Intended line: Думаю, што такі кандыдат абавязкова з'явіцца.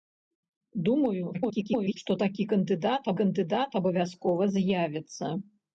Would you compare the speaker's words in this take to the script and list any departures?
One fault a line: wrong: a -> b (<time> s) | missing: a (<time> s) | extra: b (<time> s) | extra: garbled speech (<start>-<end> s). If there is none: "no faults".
extra: garbled speech (1.3-2.0 s)
extra: кандыдат (3.2 s)